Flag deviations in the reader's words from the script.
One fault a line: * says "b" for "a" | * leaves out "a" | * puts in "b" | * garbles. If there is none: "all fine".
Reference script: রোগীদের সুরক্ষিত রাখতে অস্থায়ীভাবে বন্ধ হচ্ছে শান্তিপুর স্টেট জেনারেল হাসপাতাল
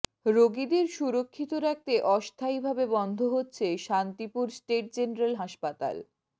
all fine